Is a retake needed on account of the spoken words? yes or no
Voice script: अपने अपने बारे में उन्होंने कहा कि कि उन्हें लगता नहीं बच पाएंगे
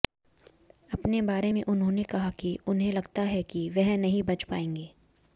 yes